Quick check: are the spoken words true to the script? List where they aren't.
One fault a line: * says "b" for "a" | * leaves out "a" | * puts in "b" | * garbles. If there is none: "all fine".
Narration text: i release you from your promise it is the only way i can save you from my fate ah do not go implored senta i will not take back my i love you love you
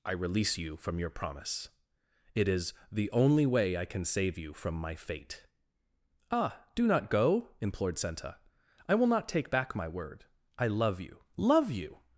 * puts in "word"